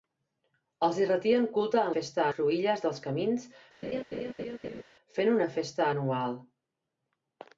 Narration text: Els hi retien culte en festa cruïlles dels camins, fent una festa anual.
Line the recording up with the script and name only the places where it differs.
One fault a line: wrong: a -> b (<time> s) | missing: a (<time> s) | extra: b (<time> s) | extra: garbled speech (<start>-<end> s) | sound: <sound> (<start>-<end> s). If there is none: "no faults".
sound: laugh (3.8-4.8 s)